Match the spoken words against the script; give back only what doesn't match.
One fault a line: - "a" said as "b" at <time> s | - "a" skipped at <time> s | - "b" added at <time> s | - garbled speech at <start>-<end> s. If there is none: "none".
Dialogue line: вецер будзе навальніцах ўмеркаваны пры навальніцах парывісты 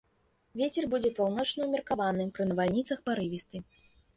- "навальніцах" said as "паўночны" at 1.2 s